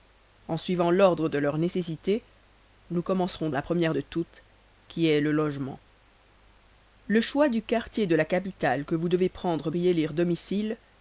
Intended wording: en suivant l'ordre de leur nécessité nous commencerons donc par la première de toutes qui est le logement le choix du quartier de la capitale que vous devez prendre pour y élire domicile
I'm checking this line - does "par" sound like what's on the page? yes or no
no